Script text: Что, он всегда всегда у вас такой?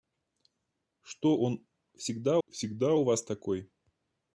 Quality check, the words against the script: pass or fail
pass